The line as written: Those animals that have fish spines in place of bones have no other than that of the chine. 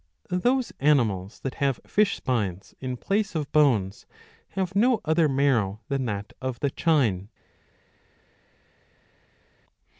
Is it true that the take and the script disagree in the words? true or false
true